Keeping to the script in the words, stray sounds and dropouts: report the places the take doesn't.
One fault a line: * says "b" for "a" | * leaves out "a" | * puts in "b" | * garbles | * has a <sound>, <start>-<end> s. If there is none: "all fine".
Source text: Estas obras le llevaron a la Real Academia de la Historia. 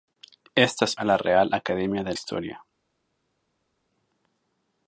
* leaves out "obras le llevaron"
* leaves out "la"